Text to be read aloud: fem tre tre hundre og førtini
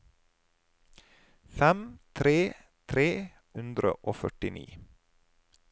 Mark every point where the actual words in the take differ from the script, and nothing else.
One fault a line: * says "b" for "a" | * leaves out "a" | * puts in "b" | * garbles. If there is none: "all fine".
all fine